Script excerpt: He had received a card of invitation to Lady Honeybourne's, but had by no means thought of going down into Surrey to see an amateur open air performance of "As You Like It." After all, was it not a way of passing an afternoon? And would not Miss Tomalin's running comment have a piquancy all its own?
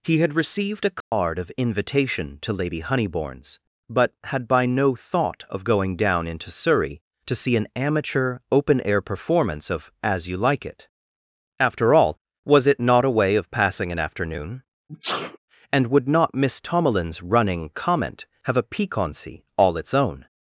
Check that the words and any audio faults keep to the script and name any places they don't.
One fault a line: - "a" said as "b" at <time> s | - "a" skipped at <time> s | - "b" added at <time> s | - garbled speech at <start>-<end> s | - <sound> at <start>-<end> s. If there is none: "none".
- dropout at 1.0-1.1 s
- "means" skipped at 5.0 s
- sneeze at 14.9-15.4 s